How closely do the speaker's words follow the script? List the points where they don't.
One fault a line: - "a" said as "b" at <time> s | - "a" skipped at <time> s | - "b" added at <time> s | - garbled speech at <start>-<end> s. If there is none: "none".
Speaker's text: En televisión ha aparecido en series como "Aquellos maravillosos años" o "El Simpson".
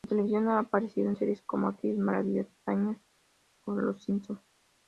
- "El" said as "Los" at 3.7 s